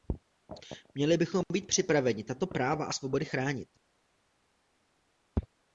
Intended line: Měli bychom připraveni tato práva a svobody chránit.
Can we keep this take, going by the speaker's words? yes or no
no